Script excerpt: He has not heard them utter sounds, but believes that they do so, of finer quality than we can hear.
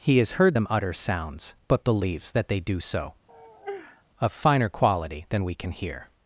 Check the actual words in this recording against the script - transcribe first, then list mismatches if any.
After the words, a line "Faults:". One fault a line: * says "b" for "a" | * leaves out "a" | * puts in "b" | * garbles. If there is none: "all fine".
He has heard them utter sounds, but believes that they do so, of finer quality than we can hear.
Faults:
* leaves out "not"